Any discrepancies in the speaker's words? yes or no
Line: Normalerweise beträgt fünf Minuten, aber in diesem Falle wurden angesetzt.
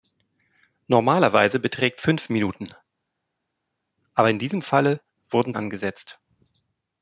no